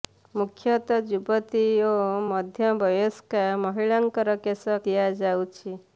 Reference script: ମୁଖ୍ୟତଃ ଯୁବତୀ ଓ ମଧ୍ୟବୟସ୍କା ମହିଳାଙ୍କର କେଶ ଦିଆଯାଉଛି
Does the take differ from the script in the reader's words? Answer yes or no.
no